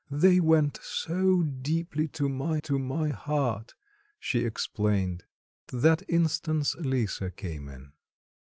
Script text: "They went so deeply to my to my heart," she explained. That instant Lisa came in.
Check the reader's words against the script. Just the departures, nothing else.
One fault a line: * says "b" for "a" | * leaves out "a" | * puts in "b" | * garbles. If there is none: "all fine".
all fine